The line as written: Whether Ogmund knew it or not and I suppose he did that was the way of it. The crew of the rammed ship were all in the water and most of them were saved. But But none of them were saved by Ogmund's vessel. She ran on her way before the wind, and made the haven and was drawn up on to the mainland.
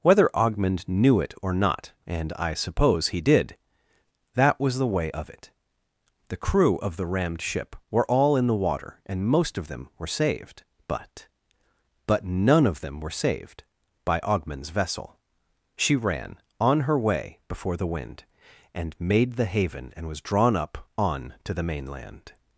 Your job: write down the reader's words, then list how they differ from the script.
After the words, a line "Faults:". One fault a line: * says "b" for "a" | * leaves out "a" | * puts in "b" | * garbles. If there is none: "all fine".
Whether Ogmund knew it or not and I suppose he did that was the way of it. The crew of the rammed ship were all in the water and most of them were saved. But But none of them were saved by Ogmund's vessel. She ran on her way before the wind, and made the haven and was drawn up on to the mainland.
Faults:
all fine